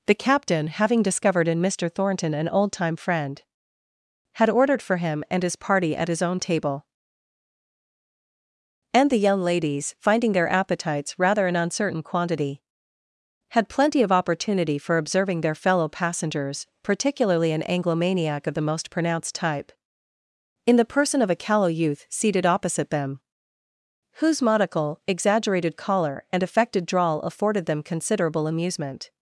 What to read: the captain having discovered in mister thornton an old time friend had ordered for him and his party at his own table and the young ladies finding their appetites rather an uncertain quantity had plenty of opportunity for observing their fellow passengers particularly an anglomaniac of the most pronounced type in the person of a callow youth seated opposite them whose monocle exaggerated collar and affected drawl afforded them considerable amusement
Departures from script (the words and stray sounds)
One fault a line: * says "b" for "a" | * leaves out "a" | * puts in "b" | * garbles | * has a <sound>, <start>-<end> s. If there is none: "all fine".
all fine